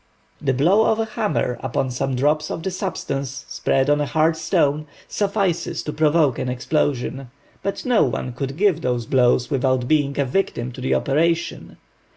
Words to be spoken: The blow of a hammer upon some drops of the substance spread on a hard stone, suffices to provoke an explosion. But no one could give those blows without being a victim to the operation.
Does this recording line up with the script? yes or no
yes